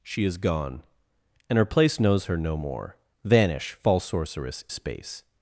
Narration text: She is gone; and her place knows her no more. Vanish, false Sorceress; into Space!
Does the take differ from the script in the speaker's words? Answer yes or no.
yes